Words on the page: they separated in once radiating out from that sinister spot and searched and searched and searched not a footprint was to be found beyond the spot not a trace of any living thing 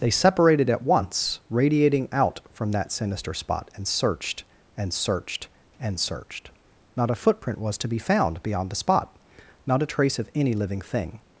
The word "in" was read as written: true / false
false